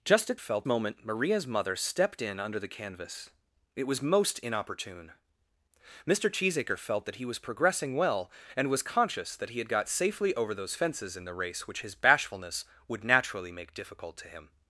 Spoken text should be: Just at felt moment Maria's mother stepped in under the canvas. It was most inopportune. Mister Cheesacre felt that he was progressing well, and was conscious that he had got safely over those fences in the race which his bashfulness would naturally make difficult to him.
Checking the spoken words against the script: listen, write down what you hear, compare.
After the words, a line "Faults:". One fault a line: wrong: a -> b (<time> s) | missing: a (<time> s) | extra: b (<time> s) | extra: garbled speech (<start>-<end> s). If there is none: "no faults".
Just at felt moment Maria's mother stepped in under the canvas. It was most inopportune. Mister Cheesacre felt that he was progressing well, and was conscious that he had got safely over those fences in the race which his bashfulness would naturally make difficult to him.
Faults:
no faults